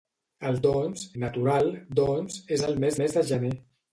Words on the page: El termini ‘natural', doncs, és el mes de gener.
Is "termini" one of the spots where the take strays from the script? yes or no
yes